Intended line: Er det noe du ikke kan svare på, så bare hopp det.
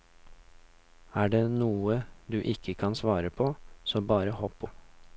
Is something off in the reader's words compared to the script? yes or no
no